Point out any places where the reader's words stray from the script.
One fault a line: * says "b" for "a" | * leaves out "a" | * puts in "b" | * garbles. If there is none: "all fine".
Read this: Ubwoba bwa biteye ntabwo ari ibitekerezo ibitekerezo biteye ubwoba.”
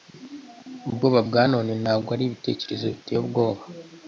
* says "none" for "biteye"
* leaves out "ibitekerezo"